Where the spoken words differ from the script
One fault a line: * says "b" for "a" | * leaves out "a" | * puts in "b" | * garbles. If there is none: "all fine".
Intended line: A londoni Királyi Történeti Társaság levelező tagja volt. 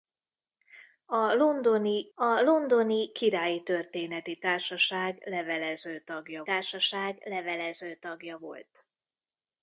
* puts in "a londoni"
* puts in "Társaság levelező tagja"